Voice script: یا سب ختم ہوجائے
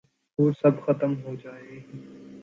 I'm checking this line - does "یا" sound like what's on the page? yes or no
no